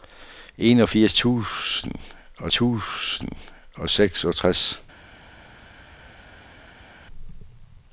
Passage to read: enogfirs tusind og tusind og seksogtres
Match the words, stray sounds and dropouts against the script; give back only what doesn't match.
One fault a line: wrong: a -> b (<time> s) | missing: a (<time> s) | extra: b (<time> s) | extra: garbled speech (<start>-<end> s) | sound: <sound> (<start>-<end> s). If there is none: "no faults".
no faults